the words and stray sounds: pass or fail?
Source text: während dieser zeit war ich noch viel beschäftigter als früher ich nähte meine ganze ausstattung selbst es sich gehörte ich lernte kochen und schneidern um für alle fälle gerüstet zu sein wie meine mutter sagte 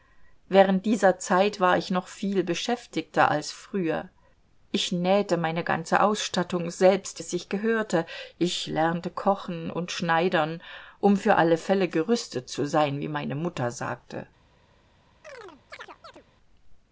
fail